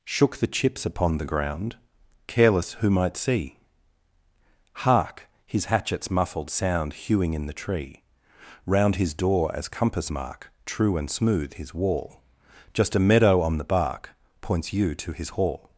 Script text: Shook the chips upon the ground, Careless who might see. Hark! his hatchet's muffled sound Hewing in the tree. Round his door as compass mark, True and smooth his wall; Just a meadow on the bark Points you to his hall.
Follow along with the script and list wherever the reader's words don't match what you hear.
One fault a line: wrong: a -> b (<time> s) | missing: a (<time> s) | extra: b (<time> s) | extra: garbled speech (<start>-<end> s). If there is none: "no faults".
no faults